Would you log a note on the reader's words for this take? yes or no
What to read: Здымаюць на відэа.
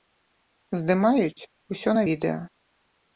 yes